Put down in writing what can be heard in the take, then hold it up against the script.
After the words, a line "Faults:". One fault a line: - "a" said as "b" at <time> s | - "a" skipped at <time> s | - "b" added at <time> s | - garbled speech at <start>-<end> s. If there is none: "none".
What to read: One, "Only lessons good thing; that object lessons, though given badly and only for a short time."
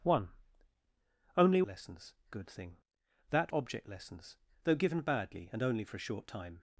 One, "Only lessons good thing; that object lessons, though given badly and only for a short time."
Faults:
none